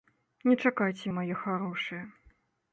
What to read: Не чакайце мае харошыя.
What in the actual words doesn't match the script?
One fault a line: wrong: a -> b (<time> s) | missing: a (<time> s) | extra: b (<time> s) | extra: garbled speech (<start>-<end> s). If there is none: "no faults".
no faults